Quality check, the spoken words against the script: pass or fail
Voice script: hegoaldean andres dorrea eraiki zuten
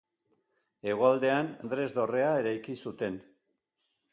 pass